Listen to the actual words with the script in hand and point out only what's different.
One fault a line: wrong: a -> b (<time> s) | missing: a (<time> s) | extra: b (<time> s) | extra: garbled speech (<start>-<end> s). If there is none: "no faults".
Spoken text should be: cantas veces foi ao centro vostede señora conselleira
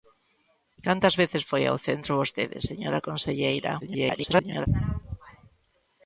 extra: garbled speech (3.8-4.7 s)